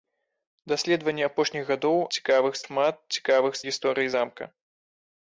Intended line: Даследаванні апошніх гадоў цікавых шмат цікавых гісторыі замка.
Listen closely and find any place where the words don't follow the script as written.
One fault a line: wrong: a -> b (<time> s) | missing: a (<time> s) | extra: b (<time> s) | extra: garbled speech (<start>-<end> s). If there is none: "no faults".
no faults